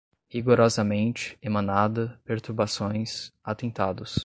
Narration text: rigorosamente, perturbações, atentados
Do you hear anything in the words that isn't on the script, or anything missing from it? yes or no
yes